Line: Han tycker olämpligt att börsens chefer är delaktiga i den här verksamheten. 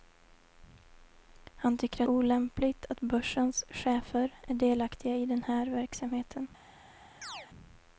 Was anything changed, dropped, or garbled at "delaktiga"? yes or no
no